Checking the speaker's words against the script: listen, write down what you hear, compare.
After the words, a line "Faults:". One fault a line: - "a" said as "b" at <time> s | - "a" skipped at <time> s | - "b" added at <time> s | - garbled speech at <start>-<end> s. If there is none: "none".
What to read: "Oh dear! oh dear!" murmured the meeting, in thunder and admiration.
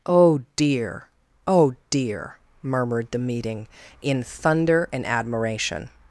"Oh dear! oh dear!" murmured the meeting, in thunder and admiration.
Faults:
none